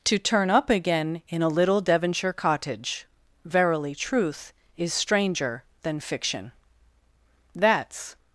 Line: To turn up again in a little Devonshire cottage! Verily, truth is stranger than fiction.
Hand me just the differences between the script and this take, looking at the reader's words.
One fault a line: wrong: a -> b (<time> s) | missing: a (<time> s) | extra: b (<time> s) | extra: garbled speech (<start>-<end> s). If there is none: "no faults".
extra: That's (7.6 s)